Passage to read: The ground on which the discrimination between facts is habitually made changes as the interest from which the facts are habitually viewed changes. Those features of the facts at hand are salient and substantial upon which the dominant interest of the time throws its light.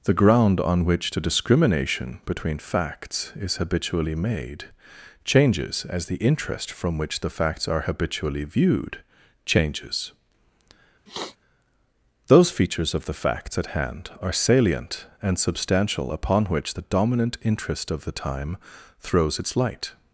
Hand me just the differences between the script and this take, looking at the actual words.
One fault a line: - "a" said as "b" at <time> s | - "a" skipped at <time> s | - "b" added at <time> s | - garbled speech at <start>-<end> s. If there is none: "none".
none